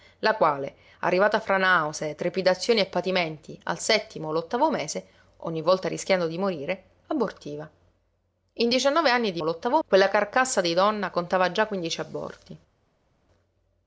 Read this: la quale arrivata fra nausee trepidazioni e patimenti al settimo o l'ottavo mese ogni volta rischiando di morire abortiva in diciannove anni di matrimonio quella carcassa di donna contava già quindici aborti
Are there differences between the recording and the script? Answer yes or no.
yes